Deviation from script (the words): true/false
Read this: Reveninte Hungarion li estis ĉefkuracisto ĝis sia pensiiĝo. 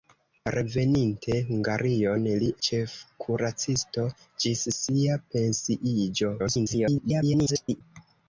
true